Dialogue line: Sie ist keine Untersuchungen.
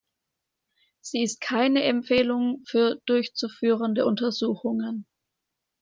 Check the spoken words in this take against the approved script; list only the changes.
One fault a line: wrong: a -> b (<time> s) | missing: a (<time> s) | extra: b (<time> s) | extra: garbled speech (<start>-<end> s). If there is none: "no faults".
extra: Empfehlung für durchzuführende (1.8 s)